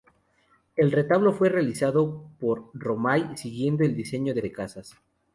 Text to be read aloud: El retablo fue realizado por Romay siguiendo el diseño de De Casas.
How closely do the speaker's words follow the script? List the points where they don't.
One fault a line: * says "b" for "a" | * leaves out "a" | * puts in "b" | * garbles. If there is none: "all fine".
all fine